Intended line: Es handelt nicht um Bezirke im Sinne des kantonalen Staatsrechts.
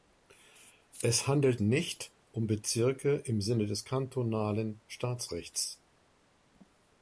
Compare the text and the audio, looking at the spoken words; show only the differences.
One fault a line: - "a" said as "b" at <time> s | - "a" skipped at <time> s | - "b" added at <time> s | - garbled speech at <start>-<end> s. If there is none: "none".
none